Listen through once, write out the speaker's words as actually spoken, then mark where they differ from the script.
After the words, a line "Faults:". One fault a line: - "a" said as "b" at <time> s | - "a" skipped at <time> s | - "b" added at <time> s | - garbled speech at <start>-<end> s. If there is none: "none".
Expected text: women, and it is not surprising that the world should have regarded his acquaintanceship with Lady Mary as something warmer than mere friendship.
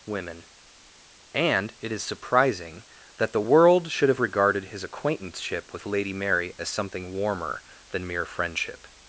women, and it is surprising that the world should have regarded his acquaintanceship with Lady Mary as something warmer than mere friendship.
Faults:
- "not" skipped at 2.0 s